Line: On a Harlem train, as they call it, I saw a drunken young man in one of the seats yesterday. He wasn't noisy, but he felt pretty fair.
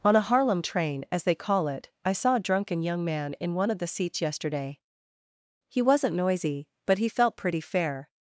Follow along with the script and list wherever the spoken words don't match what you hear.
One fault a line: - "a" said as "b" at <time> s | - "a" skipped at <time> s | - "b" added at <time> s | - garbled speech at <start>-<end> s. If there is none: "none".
none